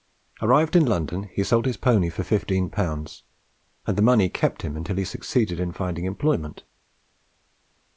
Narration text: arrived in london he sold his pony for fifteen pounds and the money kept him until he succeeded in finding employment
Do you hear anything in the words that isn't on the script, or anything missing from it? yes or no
no